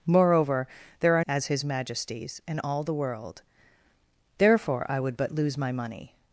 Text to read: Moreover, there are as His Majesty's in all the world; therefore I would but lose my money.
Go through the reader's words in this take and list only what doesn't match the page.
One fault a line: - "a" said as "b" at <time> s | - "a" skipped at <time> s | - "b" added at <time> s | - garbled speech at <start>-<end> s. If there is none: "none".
none